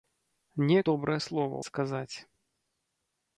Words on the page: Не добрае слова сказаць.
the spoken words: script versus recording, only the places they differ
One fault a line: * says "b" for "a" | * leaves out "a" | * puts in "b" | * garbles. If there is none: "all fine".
all fine